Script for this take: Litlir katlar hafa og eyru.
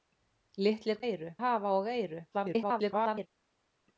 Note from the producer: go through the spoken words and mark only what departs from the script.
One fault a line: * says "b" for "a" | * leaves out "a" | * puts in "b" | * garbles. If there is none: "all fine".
* says "eyru" for "katlar"
* garbles